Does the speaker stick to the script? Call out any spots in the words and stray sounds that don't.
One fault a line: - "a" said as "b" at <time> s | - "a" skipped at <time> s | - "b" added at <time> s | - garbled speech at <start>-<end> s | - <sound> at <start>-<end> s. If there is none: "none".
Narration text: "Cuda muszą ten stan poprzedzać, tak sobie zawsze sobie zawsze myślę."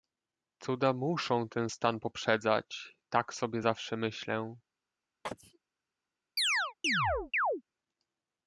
- "sobie zawsze" skipped at 4.0 s
- sneeze at 5.2-5.6 s
- chirp at 6.4-7.6 s